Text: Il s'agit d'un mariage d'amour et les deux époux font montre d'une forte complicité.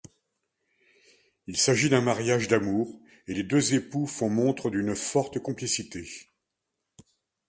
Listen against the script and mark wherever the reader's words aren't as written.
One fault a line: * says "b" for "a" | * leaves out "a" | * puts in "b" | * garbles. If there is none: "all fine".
all fine